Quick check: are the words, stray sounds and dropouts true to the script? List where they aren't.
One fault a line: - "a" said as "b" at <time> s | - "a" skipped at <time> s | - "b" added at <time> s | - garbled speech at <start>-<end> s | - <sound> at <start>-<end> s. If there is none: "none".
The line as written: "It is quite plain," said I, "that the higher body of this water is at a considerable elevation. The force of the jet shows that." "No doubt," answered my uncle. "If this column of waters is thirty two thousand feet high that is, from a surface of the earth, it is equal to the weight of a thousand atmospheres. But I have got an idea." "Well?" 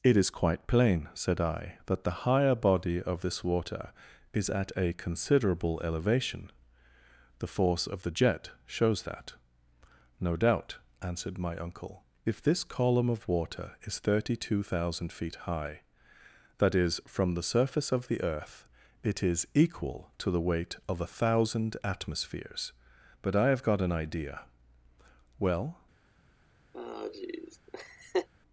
- "waters" said as "water" at 13.3 s
- "a" said as "the" at 17.3 s
- laugh at 26.7-28.3 s